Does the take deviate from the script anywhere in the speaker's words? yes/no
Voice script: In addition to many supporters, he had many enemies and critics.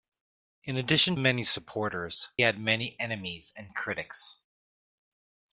yes